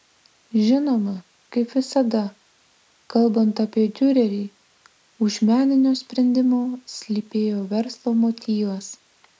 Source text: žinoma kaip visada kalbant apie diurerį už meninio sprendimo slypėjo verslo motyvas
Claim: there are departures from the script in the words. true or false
false